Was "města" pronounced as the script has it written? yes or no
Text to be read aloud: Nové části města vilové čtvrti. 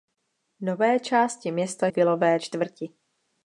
yes